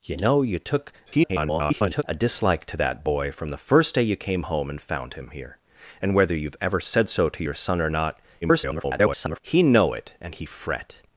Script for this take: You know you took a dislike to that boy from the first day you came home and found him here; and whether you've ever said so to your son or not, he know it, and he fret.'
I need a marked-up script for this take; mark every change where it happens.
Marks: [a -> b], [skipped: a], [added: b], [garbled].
You know you took [garbled] a dislike to that boy from the first day you came home and found him here; and whether you've ever said so to your son or not, [garbled] he know it, and he fret.'